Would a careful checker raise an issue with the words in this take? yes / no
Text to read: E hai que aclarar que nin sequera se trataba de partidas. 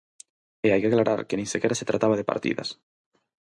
no